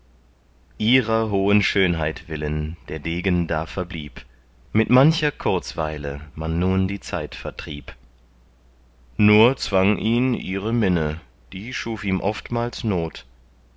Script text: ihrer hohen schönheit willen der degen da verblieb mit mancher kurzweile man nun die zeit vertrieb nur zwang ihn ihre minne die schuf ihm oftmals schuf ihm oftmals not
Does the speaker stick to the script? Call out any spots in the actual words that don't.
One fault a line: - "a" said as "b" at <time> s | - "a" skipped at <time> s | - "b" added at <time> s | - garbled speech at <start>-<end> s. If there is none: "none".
- "schuf ihm oftmals" skipped at 12.8 s